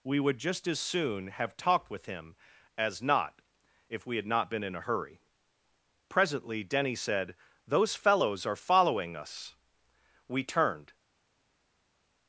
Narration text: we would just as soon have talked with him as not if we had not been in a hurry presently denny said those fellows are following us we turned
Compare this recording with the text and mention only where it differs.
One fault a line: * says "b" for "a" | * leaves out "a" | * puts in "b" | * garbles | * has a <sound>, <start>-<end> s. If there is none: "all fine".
all fine